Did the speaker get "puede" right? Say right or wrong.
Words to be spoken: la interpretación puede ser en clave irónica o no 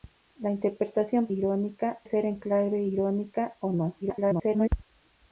wrong